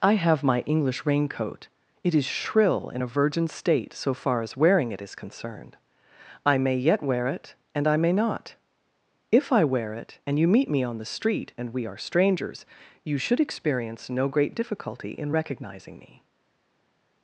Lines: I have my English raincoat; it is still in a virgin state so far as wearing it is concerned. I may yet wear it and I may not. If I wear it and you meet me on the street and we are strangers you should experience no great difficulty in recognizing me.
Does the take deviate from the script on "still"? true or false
true